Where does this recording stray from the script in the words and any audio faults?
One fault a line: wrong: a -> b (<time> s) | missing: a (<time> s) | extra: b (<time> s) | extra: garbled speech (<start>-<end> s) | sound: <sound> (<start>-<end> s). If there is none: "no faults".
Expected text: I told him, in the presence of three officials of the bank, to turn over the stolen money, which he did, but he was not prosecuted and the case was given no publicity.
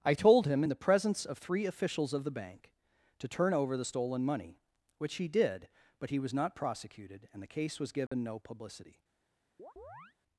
sound: dropout (8.1-8.1 s)
sound: chirp (9.6-10.1 s)